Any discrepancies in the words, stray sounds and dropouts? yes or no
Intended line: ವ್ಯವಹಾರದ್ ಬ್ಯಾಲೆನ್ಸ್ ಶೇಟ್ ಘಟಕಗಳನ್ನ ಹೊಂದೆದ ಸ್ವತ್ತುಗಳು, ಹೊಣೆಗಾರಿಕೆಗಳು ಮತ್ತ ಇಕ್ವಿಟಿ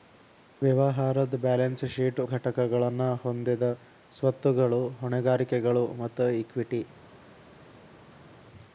no